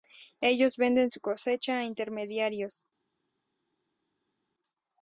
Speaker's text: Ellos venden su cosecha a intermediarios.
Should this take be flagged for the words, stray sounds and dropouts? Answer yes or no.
no